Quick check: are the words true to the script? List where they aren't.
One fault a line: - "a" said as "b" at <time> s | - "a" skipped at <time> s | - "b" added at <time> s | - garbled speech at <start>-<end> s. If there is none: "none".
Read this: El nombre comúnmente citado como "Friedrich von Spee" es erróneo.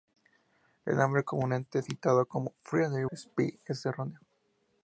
- "von" skipped at 3.0 s